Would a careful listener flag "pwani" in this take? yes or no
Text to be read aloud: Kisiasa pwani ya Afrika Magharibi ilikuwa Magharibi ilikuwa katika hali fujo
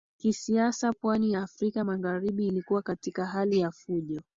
no